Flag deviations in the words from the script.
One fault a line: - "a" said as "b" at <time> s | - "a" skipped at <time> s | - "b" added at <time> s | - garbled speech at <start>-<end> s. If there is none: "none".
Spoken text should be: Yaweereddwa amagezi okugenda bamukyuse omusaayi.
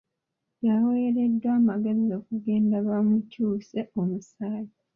none